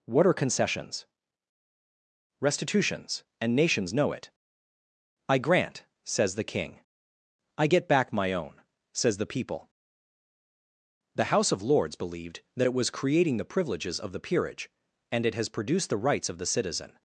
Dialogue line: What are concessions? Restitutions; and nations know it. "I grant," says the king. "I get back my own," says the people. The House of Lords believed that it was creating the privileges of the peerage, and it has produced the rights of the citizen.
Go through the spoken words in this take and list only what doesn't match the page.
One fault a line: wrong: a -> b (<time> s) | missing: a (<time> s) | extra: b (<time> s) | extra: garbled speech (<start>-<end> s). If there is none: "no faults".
no faults